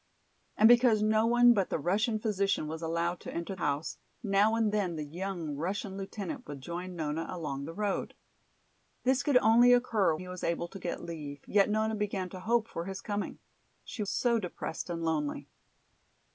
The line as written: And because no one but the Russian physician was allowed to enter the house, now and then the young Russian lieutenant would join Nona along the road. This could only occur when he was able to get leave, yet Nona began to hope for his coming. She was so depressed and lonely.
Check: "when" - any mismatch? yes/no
yes